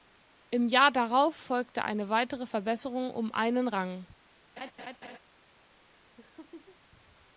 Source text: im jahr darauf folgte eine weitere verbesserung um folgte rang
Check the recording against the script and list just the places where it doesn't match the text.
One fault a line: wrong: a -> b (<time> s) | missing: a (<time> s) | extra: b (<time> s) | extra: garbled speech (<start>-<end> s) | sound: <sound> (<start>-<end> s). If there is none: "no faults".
wrong: folgte -> einen (3.3 s)
sound: laugh (4.6-5.2 s)
sound: laugh (6.2-6.8 s)